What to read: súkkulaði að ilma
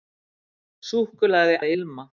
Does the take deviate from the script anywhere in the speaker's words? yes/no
no